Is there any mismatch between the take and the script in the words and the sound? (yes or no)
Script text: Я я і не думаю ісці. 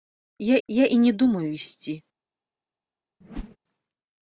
yes